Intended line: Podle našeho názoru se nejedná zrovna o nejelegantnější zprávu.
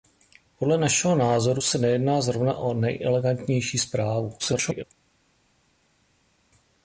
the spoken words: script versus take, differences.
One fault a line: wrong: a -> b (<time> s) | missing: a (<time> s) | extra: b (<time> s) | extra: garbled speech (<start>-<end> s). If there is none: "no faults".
extra: garbled speech (4.4-4.8 s)